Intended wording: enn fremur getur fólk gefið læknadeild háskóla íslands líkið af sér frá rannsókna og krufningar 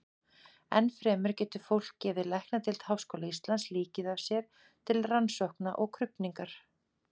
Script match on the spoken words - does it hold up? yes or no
no